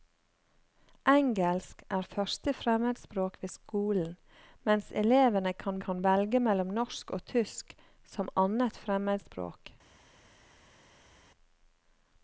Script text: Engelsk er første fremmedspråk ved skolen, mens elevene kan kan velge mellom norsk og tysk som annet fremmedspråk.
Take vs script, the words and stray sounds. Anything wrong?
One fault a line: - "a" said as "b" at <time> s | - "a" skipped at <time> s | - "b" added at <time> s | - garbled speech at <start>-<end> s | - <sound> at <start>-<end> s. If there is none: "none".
none